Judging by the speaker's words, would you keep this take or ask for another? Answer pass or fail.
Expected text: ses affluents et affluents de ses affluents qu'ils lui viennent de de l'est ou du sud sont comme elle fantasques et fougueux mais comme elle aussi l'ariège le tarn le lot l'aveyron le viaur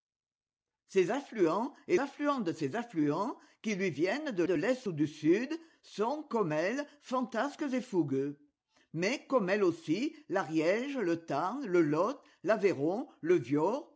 pass